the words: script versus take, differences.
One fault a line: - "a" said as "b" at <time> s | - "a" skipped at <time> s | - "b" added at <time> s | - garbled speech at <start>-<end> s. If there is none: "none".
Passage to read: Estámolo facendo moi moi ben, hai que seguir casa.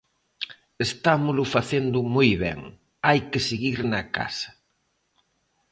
- "moi" skipped at 2.3 s
- "na" added at 3.9 s